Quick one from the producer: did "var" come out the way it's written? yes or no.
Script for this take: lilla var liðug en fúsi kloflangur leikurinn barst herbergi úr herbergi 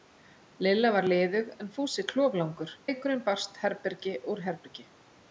yes